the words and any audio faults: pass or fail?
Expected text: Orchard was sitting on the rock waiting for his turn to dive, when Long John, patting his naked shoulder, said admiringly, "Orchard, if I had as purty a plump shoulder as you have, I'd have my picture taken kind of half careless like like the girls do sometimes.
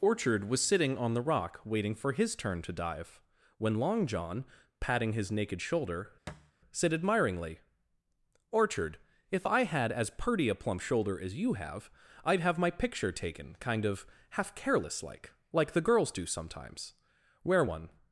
fail